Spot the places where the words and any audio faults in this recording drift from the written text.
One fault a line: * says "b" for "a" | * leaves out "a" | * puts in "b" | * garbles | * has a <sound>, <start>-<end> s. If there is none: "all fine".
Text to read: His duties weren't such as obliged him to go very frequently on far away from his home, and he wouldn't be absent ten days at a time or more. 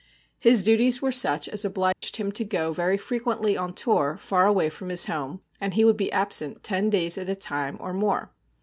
* says "were" for "weren't"
* has a dropout, 1.9-2.0 s
* puts in "tour"
* says "would" for "wouldn't"